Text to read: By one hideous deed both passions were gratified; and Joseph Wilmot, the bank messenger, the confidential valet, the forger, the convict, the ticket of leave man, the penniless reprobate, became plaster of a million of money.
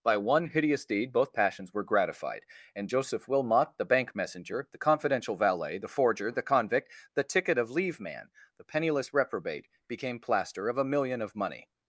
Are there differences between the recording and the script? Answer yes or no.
no